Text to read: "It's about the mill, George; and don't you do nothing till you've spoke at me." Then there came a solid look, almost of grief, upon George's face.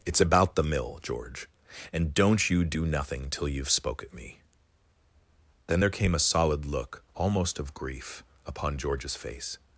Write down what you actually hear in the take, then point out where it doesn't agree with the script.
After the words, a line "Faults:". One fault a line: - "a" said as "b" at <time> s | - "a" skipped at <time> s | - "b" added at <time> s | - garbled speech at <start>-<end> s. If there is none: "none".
"It's about the mill, George; and don't you do nothing till you've spoke at me." Then there came a solid look, almost of grief, upon George's face.
Faults:
none